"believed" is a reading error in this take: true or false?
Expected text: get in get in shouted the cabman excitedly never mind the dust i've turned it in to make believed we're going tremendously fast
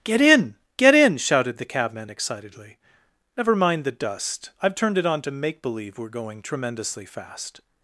true